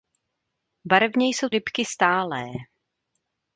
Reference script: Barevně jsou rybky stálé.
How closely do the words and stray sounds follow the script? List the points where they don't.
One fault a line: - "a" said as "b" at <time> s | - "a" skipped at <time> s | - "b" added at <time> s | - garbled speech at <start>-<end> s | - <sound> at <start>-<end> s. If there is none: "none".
none